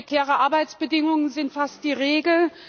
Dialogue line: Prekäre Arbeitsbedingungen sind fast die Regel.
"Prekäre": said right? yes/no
yes